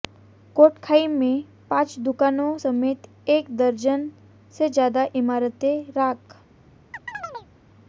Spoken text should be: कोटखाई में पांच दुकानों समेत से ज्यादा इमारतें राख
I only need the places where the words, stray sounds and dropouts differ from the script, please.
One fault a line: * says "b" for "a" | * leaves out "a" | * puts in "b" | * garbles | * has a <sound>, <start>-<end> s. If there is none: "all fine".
* puts in "एक दर्जन"
* has a chirp, 6.9-7.5 s